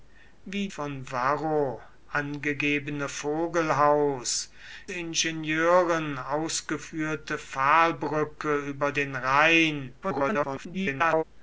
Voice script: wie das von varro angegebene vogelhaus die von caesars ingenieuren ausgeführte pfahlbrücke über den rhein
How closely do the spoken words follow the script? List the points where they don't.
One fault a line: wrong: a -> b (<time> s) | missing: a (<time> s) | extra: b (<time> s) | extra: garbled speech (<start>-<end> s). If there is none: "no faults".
missing: das (0.7 s)
missing: die von caesars (4.5 s)
extra: garbled speech (10.0-11.2 s)